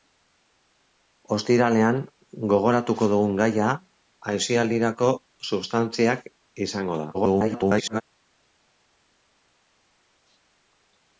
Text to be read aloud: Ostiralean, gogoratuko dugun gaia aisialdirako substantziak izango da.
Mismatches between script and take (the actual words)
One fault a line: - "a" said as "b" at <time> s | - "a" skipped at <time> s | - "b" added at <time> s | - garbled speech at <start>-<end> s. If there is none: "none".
- garbled speech at 7.1-8.0 s